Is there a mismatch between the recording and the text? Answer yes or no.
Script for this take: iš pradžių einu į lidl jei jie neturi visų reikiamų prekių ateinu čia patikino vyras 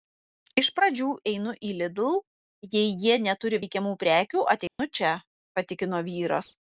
yes